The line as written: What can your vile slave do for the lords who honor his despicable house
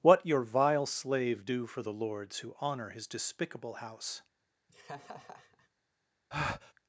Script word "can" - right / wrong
wrong